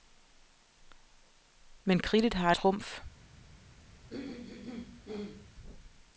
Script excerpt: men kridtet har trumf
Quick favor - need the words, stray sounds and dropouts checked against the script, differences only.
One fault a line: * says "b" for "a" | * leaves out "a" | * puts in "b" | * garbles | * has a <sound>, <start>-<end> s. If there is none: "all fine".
* has a throat clearing, 4.1-5.5 s